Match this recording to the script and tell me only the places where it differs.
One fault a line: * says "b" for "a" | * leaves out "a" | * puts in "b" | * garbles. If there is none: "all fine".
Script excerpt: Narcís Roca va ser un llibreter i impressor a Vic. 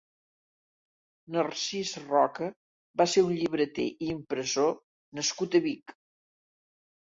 * puts in "nascut"